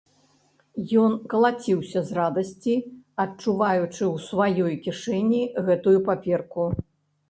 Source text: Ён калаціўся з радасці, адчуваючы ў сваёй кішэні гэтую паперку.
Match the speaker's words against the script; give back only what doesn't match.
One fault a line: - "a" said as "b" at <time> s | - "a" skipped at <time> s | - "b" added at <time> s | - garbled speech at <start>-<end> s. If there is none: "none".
none